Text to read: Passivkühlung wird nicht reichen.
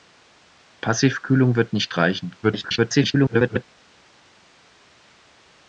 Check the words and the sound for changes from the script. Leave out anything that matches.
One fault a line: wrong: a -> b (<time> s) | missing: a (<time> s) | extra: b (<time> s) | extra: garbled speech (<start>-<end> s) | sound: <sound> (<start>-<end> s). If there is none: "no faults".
extra: garbled speech (2.4-3.6 s)